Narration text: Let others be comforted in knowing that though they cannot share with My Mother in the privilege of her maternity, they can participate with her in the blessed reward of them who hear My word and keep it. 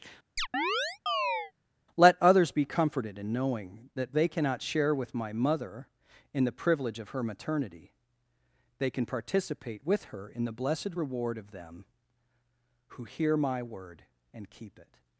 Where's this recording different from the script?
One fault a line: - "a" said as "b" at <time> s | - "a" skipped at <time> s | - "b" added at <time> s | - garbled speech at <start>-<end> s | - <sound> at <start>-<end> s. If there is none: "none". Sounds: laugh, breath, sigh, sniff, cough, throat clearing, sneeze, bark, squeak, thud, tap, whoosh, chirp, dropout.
- chirp at 0.4-1.5 s
- "though" skipped at 4.2 s